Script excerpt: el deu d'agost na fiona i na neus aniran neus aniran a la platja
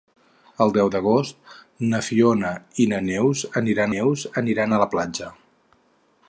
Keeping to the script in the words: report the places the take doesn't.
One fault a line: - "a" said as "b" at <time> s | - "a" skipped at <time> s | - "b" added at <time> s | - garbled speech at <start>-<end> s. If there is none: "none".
none